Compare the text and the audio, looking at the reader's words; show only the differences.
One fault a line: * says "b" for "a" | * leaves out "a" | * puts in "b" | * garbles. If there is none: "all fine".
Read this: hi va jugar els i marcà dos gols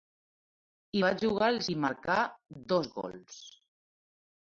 all fine